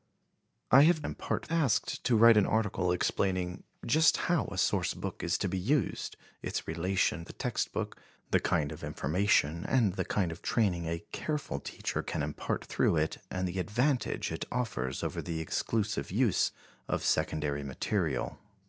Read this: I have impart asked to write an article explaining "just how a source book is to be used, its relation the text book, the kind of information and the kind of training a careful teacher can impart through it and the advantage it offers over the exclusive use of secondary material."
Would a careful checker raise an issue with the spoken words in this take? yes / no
no